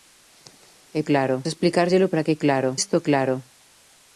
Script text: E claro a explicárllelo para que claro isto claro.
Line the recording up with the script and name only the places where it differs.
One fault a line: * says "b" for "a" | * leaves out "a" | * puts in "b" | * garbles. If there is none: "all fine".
all fine